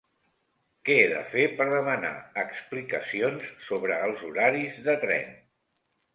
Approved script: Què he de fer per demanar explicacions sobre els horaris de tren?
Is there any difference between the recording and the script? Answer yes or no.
no